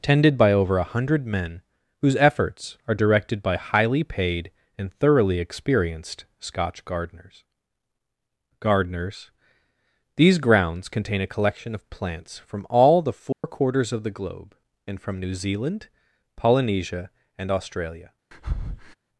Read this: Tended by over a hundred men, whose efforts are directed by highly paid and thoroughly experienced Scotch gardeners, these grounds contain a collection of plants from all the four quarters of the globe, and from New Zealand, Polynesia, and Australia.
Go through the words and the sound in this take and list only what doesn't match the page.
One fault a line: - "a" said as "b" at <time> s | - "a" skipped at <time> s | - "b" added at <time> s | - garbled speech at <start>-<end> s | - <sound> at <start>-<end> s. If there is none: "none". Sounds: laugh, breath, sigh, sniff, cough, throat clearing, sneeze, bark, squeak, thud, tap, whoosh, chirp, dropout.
- "gardeners" added at 8.6 s
- dropout at 13.3-13.4 s
- breath at 18.3-18.9 s